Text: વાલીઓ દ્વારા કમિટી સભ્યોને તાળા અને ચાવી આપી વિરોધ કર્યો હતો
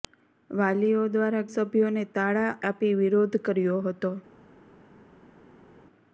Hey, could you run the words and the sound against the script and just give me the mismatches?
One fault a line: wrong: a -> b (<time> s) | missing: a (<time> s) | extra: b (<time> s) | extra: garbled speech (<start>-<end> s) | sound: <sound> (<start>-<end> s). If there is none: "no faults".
missing: કમિટી (1.4 s)
missing: અને ચાવી (2.5 s)